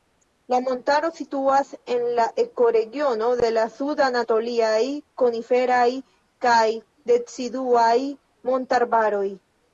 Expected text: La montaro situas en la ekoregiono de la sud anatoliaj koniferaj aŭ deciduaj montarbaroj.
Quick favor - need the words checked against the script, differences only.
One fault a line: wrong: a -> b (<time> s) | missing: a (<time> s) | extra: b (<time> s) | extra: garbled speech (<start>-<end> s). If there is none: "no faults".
wrong: aŭ -> kaj (6.5 s)